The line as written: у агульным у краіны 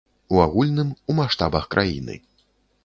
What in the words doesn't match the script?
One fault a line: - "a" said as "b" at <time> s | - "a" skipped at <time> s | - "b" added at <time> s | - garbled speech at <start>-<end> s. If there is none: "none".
- "маштабах" added at 1.2 s